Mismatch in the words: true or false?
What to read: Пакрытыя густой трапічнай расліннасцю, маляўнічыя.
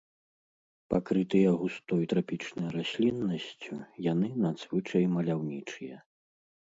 true